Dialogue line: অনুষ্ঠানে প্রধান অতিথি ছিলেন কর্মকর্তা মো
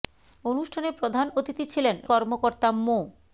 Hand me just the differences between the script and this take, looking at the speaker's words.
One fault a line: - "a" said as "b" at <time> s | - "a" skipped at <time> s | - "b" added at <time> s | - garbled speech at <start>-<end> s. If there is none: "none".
none